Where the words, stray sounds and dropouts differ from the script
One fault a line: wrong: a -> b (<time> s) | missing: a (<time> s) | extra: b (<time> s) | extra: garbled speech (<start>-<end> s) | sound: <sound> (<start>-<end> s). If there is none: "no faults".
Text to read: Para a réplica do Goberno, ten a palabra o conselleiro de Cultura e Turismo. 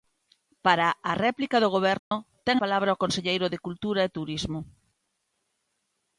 sound: dropout (2.0-2.1 s)
missing: a (2.6 s)